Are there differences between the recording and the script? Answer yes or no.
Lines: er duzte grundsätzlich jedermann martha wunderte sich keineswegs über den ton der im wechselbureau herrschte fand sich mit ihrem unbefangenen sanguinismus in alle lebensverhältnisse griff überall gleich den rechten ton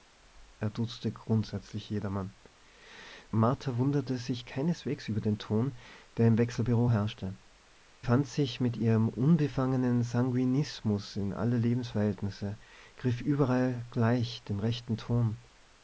no